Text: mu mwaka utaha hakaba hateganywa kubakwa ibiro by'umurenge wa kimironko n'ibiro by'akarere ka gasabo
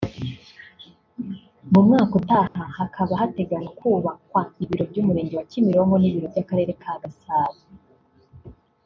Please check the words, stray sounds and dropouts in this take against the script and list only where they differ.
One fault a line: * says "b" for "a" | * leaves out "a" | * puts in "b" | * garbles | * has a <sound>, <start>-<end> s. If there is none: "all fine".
* has a dropout, 2.5-2.6 s